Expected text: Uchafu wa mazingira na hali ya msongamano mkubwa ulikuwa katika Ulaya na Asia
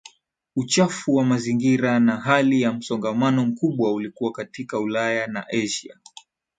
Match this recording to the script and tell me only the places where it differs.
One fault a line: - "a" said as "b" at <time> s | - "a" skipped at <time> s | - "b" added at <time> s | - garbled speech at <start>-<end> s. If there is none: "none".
none